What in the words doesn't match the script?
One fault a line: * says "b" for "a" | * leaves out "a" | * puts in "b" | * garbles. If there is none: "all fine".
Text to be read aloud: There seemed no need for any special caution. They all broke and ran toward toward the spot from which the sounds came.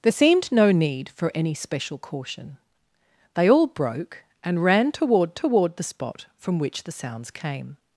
all fine